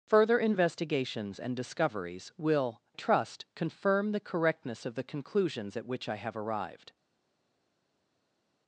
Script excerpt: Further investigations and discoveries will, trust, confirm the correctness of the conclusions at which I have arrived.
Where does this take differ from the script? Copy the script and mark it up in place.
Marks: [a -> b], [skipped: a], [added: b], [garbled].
Further investigations and discoveries will, trust, confirm the correctness of the conclusions at which I have arrived.